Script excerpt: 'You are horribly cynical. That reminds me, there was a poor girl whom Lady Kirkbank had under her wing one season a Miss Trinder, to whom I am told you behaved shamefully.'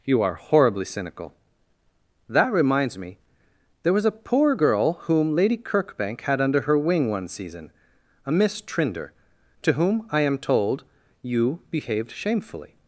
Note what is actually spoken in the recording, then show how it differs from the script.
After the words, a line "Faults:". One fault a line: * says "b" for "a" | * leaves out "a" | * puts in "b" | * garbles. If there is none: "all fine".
'You are horribly cynical. That reminds me, there was a poor girl whom Lady Kirkbank had under her wing one season a Miss Trinder, to whom I am told you behaved shamefully.'
Faults:
all fine